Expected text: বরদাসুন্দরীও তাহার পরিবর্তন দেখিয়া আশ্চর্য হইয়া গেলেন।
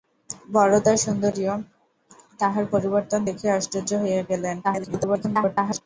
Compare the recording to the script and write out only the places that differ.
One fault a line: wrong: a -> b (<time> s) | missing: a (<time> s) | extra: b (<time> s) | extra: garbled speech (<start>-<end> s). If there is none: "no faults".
extra: garbled speech (4.6-5.8 s)